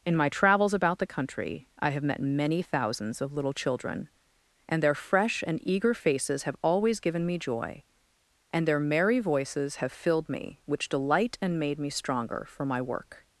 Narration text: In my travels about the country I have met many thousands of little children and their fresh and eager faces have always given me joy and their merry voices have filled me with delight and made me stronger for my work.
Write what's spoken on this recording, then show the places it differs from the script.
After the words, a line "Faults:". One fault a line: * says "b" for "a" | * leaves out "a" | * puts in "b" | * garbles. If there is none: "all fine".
In my travels about the country I have met many thousands of little children and their fresh and eager faces have always given me joy and their merry voices have filled me which delight and made me stronger for my work.
Faults:
* says "which" for "with"